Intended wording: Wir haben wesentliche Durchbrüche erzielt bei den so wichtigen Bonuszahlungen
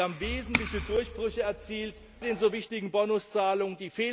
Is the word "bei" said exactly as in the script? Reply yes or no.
no